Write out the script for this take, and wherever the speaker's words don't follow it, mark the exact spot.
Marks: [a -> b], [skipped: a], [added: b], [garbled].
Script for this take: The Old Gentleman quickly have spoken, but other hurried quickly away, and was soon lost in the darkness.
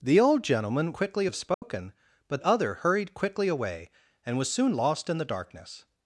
The Old Gentleman quickly have spoken, but other hurried quickly away, and was soon lost in the darkness.